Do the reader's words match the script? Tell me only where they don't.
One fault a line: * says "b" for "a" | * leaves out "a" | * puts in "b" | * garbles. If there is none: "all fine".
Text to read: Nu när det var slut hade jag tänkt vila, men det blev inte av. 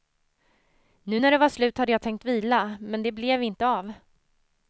all fine